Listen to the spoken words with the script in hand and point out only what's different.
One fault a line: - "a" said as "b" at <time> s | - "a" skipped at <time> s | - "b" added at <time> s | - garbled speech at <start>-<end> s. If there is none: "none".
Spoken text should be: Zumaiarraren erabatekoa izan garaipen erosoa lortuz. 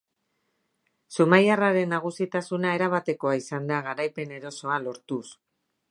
- "nagusitasuna" added at 1.9 s
- "da" added at 3.7 s